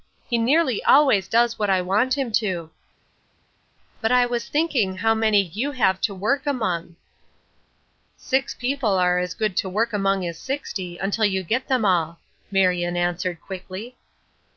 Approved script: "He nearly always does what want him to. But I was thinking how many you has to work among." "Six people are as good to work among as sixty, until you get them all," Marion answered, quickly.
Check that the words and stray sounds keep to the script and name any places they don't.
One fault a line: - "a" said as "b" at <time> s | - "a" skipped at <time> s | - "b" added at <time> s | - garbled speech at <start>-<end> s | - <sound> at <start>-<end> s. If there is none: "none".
- "I" added at 1.7 s
- "has" said as "have" at 5.7 s